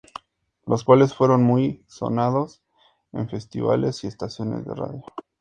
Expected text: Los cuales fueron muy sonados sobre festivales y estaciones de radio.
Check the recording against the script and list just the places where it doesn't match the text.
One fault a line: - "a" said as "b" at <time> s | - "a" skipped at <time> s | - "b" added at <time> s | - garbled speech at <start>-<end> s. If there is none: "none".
- "sobre" said as "en" at 3.1 s